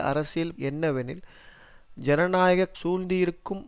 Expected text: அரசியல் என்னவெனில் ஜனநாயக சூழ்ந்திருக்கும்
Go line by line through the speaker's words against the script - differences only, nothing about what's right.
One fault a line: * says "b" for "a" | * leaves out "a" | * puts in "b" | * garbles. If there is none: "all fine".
all fine